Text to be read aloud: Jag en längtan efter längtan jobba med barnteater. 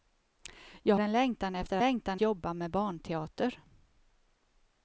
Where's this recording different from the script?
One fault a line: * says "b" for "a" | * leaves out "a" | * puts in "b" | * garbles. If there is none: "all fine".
all fine